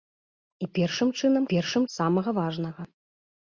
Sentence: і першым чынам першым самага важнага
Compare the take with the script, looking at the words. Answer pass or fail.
pass